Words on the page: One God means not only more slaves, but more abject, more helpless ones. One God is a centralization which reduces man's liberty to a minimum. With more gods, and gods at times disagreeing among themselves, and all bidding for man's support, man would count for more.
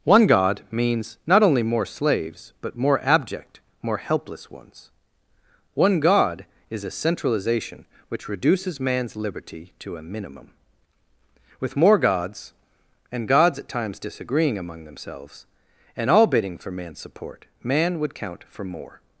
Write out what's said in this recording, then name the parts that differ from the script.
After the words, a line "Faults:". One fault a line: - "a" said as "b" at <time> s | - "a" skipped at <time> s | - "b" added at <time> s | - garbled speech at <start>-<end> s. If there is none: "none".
One God means not only more slaves, but more abject, more helpless ones. One God is a centralization which reduces man's liberty to a minimum. With more gods, and gods at times disagreeing among themselves, and all bidding for man's support, man would count for more.
Faults:
none